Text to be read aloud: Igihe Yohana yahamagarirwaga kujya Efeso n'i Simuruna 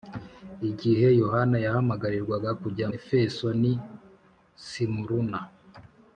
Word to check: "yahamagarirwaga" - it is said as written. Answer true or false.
true